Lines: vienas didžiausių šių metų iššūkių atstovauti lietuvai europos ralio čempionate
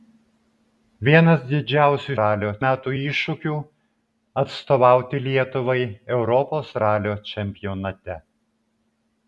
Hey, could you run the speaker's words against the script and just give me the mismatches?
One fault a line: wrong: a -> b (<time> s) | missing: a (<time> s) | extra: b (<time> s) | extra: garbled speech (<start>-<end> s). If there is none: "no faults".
wrong: šių -> ralio (2.2 s)